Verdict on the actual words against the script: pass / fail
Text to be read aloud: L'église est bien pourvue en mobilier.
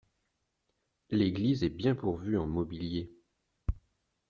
pass